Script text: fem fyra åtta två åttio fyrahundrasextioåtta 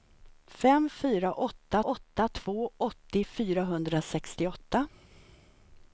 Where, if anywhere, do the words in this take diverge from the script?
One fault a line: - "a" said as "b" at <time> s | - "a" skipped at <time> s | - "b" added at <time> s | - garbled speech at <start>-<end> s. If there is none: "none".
- "åtta" added at 1.8 s